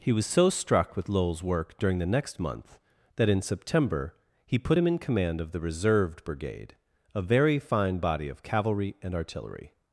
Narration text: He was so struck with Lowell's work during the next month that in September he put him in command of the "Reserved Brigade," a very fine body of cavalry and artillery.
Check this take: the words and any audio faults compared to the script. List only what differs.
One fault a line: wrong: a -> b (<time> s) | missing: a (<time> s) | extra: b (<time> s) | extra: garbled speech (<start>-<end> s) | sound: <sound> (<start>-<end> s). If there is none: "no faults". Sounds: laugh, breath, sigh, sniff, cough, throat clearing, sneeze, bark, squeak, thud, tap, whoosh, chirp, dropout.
no faults